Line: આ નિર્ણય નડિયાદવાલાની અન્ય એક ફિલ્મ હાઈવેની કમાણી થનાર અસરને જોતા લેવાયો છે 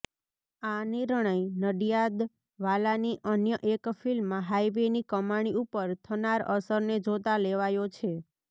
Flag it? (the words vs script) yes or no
yes